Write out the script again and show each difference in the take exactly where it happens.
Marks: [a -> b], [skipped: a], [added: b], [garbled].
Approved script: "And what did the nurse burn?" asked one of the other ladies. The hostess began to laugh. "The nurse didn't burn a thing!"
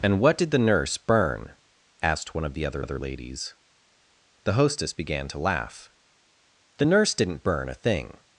"And what did the nurse burn?" asked one of the other [added: other] ladies. The hostess began to laugh. "The nurse didn't burn a thing!"